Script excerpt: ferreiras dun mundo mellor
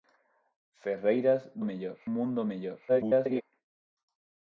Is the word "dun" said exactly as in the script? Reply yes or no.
no